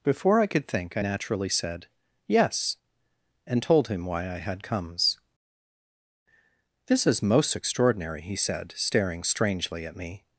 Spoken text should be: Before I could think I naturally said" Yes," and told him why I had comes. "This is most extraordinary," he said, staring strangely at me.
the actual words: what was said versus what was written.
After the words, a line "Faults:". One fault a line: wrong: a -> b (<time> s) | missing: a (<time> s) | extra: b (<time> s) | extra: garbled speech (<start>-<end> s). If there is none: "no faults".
Before I could think I naturally said" Yes," and told him why I had comes. "This is most extraordinary," he said, staring strangely at me.
Faults:
no faults